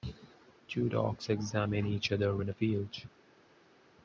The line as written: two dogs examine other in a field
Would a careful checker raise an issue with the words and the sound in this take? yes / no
yes